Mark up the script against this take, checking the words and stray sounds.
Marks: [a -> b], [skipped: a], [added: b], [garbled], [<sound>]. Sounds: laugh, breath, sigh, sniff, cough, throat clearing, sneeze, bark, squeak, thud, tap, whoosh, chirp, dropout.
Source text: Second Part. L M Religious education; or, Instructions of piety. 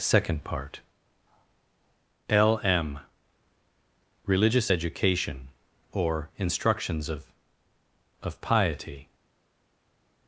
Second Part. L M Religious education; or, Instructions of [added: of] piety.